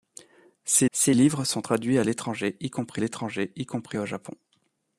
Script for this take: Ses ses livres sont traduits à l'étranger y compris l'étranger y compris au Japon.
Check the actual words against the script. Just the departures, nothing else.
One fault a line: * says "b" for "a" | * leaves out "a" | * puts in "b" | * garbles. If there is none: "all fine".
all fine